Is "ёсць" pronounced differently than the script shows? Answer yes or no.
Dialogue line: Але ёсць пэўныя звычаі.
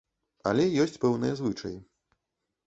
no